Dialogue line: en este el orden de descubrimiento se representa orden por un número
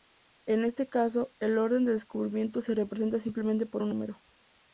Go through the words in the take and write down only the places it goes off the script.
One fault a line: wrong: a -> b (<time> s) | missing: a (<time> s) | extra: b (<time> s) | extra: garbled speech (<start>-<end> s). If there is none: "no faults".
extra: caso (0.9 s)
wrong: orden -> simplemente (3.2 s)